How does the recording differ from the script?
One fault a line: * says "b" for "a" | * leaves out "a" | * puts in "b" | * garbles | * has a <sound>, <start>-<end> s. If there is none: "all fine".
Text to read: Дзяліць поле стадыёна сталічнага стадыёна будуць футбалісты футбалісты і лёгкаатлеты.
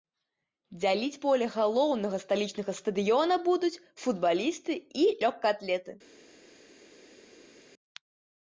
* says "галоўнага" for "стадыёна"
* leaves out "футбалісты"